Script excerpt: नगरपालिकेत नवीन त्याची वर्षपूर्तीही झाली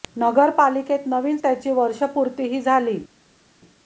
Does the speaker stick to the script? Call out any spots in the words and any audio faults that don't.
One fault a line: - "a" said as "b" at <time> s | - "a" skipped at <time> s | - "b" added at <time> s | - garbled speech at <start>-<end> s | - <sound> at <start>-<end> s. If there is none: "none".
none